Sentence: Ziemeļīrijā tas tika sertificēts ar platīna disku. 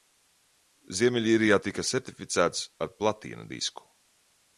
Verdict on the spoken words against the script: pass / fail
fail